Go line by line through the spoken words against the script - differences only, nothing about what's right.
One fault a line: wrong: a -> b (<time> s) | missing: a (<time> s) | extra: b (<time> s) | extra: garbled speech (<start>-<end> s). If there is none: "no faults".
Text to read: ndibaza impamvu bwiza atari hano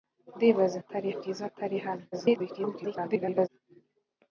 wrong: impamvu -> atari (0.8 s)
extra: garbled speech (2.1-3.5 s)